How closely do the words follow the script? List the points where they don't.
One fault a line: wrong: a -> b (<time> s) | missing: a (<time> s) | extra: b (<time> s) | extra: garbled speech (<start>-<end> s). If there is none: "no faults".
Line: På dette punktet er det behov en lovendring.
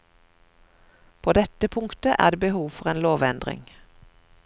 extra: for (2.7 s)